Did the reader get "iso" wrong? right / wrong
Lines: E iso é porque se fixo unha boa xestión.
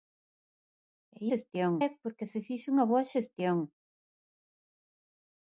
wrong